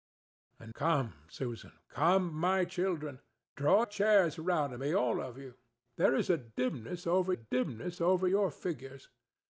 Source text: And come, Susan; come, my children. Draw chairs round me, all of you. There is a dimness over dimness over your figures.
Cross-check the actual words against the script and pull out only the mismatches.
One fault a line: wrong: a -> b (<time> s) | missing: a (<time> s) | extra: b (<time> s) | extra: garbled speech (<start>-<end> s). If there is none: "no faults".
no faults